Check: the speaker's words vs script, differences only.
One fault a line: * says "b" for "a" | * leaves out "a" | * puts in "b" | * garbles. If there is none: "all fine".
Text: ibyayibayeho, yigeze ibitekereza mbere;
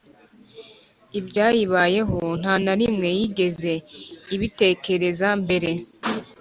* puts in "nta na rimwe"